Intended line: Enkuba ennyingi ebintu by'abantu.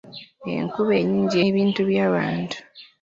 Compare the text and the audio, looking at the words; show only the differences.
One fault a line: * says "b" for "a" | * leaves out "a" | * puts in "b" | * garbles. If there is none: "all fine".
all fine